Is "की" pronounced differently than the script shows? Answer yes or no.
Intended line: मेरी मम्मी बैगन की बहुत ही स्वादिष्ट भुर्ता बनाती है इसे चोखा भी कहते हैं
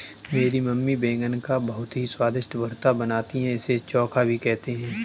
yes